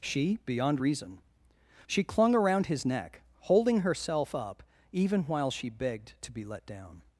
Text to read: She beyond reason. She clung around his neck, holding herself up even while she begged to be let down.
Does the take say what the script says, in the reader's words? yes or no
yes